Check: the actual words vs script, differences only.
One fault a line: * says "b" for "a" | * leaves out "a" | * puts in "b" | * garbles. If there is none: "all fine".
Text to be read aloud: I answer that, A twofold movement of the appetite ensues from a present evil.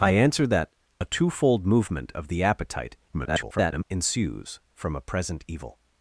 * garbles